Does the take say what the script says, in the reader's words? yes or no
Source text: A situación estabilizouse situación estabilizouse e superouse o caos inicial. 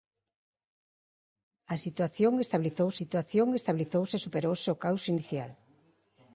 yes